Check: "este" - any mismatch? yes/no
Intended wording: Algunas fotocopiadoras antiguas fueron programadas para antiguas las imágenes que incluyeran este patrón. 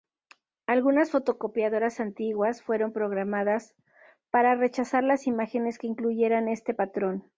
no